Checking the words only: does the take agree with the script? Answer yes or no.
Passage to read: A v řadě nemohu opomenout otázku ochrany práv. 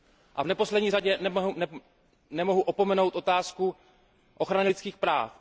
no